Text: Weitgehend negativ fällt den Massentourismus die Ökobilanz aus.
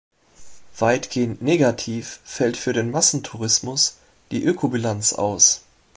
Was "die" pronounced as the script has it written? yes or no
yes